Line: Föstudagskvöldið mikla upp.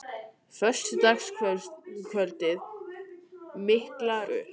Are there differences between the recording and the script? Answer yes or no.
no